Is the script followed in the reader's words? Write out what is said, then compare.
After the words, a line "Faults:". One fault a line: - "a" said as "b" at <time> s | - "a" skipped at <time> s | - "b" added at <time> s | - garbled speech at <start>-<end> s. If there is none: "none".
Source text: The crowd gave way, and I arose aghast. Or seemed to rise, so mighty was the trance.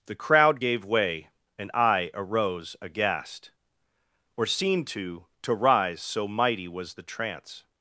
The crowd gave way, and I arose aghast. Or seemed to to rise, so mighty was the trance.
Faults:
- "to" added at 5.4 s